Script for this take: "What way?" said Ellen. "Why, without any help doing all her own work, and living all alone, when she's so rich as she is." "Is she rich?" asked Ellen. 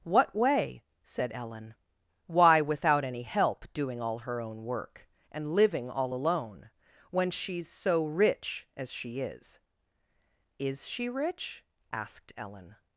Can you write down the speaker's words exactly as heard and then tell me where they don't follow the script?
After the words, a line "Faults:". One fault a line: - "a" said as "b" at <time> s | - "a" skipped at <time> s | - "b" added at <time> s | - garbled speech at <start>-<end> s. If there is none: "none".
"What way?" said Ellen. "Why, without any help doing all her own work, and living all alone, when she's so rich as she is." "Is she rich?" asked Ellen.
Faults:
none